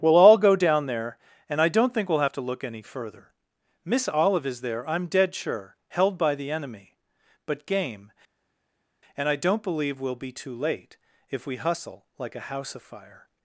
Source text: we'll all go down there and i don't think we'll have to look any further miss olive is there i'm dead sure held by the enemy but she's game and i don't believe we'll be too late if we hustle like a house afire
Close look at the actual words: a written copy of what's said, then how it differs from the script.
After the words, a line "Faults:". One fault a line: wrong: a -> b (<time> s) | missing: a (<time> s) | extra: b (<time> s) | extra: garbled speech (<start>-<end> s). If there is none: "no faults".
we'll all go down there and i don't think we'll have to look any further miss olive is there i'm dead sure held by the enemy but game and i don't believe we'll be too late if we hustle like a house afire
Faults:
missing: she's (7.7 s)